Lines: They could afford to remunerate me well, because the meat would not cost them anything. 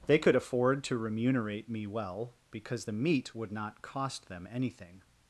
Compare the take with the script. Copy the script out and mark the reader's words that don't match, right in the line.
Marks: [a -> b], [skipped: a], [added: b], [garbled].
They could afford to remunerate me well, because the meat would not cost them anything.